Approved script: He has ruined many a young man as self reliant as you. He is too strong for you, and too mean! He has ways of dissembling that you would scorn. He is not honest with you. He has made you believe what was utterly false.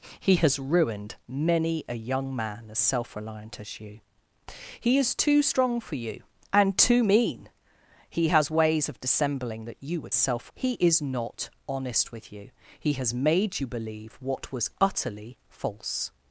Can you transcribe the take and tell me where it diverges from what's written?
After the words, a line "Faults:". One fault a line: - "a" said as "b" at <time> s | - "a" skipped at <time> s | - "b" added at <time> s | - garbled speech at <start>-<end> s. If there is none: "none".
He has ruined many a young man as self reliant as you. He is too strong for you, and too mean! He has ways of dissembling that you would self. He is not honest with you. He has made you believe what was utterly false.
Faults:
- "scorn" said as "self" at 10.1 s